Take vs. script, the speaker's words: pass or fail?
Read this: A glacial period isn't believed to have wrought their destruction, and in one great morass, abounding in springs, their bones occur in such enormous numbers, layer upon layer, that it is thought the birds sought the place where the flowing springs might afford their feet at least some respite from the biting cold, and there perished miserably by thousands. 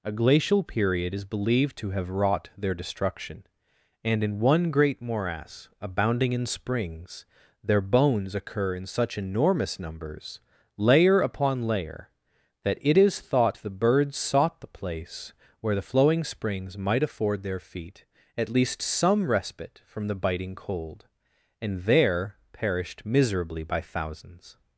fail